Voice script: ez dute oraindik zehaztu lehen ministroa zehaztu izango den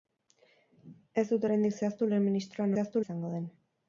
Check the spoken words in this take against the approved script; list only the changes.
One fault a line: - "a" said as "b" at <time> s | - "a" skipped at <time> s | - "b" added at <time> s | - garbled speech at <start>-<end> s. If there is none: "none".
none